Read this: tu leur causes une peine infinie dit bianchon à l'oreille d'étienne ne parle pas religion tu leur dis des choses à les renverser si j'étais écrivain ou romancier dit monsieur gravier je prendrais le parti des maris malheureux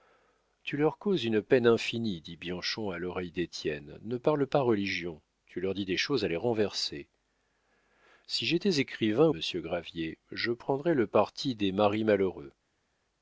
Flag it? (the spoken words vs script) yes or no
yes